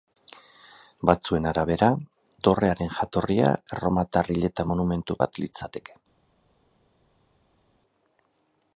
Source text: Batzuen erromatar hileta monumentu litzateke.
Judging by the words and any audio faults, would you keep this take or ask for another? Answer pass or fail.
fail